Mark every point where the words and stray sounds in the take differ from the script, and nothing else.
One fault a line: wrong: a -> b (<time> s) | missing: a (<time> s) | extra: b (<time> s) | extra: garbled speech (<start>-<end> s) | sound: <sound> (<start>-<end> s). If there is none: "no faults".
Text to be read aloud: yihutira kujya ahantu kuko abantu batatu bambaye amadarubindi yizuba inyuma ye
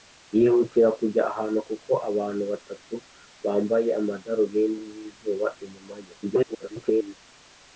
extra: garbled speech (6.2-7.2 s)